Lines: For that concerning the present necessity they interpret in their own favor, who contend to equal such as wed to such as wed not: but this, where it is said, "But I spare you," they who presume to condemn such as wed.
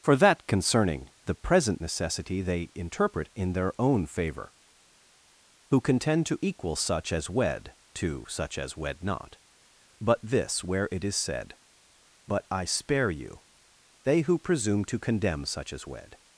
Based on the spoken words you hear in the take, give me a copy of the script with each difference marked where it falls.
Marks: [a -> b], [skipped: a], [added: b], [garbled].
For that concerning the present necessity they interpret in their own favor, who contend to equal such as wed to such as wed not: but this, where it is said, "But I spare you," they who presume to condemn such as wed.